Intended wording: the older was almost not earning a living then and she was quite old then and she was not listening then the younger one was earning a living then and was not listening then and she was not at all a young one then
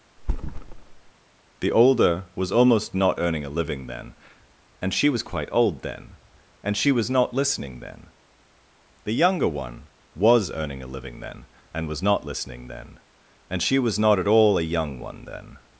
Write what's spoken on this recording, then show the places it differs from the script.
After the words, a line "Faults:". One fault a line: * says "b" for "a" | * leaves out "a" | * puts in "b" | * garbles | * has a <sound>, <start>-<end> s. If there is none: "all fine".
the older was almost not earning a living then and she was quite old then and she was not listening then the younger one was earning a living then and was not listening then and she was not at all a young one then
Faults:
* has a thud, 0.2-1.1 s